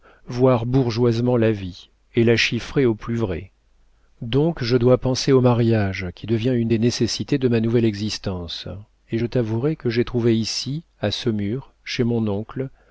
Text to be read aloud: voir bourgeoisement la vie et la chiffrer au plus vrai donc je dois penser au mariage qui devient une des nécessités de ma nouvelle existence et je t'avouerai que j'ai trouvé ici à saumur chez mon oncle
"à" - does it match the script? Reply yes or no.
yes